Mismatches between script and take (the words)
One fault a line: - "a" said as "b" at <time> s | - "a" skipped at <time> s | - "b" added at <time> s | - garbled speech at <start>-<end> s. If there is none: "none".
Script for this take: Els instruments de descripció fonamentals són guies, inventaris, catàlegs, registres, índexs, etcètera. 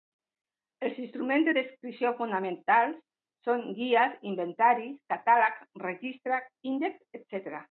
none